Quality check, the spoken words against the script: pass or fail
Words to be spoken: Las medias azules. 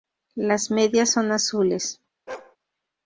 fail